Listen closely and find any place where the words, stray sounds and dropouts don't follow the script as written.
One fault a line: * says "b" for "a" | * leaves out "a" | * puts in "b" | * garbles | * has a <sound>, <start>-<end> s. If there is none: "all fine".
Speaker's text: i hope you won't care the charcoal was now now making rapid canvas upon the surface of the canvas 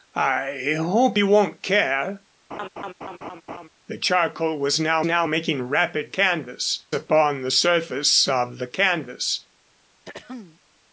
* has a laugh, 2.5-3.7 s
* has a throat clearing, 10.1-10.6 s